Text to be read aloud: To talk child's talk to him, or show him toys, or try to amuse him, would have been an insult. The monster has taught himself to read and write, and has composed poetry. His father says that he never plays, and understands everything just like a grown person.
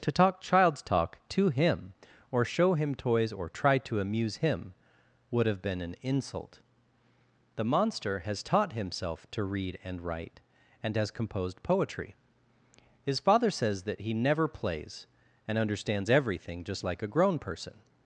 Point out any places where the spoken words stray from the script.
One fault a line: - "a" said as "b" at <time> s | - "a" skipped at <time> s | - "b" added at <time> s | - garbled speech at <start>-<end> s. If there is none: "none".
none